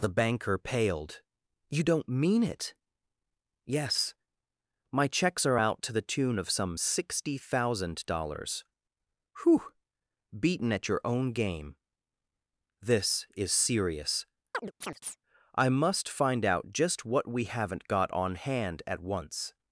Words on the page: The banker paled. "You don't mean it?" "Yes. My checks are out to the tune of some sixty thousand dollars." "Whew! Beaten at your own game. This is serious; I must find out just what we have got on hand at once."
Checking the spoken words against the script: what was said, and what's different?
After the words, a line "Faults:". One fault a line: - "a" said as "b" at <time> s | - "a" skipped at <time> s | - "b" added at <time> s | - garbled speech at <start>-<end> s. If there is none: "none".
The banker paled. "You don't mean it?" "Yes. My checks are out to the tune of some sixty thousand dollars." "Whew! Beaten at your own game. This is serious; I must find out just what we haven't got on hand at once."
Faults:
- "have" said as "haven't" at 17.5 s